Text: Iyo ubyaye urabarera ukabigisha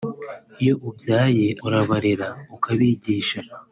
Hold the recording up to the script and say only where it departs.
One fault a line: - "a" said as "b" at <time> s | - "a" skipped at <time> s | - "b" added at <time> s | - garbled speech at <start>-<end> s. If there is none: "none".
none